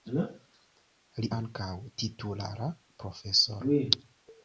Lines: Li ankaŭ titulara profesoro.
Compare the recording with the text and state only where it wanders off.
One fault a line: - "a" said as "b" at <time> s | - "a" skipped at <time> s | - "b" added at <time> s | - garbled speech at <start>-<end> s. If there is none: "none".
none